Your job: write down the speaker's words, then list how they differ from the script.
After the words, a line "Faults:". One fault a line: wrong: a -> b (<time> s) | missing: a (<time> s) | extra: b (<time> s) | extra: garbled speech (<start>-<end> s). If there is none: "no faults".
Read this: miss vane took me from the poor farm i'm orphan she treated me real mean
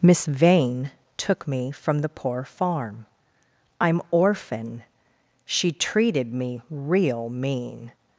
miss vane took me from the poor farm i'm orphan she treated me real mean
Faults:
no faults